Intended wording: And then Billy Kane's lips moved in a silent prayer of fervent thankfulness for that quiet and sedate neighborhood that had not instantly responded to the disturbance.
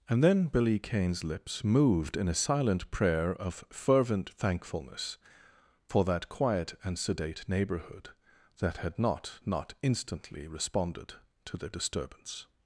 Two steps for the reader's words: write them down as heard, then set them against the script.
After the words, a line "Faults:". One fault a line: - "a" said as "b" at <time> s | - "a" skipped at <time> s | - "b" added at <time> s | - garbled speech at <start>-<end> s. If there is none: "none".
And then Billy Kane's lips moved in a silent prayer of fervent thankfulness for that quiet and sedate neighborhood that had not not instantly responded to the disturbance.
Faults:
- "not" added at 9.4 s